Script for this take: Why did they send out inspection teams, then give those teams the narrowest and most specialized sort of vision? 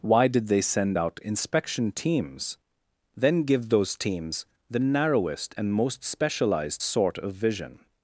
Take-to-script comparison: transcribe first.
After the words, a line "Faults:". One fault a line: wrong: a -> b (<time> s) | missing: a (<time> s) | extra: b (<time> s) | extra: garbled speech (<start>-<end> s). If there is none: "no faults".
Why did they send out inspection teams, then give those teams the narrowest and most specialized sort of vision?
Faults:
no faults